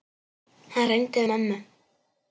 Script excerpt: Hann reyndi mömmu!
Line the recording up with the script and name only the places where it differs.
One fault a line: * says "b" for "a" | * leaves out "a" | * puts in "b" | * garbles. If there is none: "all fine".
all fine